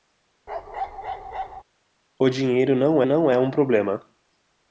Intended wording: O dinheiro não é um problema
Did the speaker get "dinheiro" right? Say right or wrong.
right